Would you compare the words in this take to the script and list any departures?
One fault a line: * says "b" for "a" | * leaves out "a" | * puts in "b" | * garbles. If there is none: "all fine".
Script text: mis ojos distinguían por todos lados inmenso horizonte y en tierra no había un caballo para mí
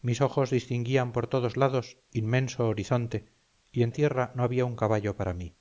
all fine